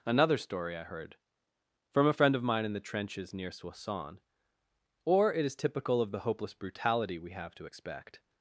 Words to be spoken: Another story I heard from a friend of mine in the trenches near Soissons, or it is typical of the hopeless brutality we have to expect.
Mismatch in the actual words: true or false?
false